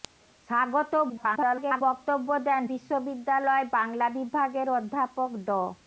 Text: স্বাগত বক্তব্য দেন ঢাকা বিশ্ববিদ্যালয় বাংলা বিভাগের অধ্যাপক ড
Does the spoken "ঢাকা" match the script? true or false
false